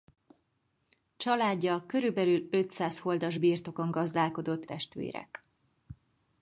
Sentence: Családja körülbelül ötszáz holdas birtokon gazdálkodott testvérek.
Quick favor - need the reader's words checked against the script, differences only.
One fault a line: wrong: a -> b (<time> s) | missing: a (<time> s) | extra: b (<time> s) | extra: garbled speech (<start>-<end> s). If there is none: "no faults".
no faults